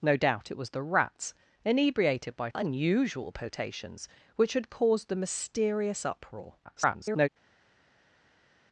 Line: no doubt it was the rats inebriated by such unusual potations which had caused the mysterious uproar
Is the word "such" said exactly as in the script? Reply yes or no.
no